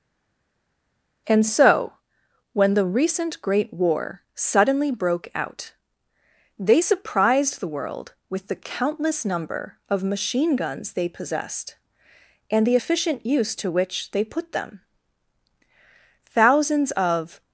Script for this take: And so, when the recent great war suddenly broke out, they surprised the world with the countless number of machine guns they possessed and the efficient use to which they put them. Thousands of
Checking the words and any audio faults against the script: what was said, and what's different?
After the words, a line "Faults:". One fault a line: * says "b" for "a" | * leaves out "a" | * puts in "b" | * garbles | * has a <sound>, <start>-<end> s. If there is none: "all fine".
And so, when the recent great war suddenly broke out, they surprised the world with the countless number of machine guns they possessed and the efficient use to which they put them. Thousands of
Faults:
all fine